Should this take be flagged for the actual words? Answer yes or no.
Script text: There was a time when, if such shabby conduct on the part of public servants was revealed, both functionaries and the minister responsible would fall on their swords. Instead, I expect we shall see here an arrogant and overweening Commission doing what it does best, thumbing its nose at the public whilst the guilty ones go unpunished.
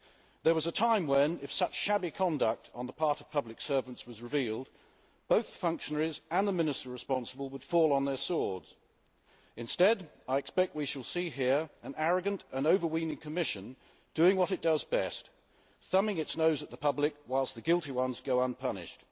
no